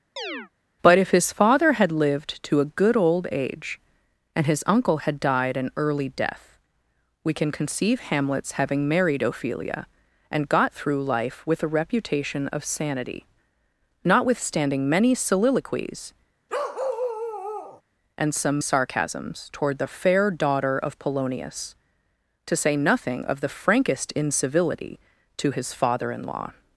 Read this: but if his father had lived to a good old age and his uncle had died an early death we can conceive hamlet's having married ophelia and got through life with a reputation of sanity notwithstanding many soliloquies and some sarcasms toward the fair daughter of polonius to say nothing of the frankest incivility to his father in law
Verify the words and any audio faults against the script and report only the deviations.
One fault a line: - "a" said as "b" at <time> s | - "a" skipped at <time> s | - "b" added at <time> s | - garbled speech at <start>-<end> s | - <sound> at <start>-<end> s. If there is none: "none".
- chirp at 0.2-0.5 s
- bark at 16.5-17.8 s